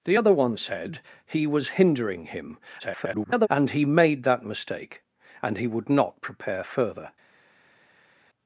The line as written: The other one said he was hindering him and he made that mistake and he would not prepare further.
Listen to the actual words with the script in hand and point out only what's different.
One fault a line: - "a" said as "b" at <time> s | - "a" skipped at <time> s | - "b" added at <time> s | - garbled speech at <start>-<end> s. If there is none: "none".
- garbled speech at 2.8-3.5 s